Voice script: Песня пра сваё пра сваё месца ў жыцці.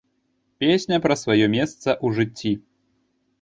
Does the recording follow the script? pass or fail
fail